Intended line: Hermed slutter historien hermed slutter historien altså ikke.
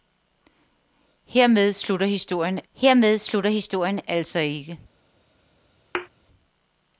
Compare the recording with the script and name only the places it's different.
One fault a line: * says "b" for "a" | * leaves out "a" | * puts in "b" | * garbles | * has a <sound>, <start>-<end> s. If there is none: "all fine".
* has a thud, 5.9-6.1 s